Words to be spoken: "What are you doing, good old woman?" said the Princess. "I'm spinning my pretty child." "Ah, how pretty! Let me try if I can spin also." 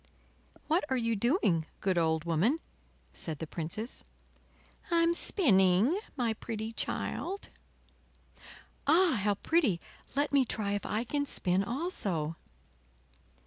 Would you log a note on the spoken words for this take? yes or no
no